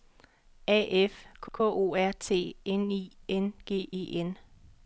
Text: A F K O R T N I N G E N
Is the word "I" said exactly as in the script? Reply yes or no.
yes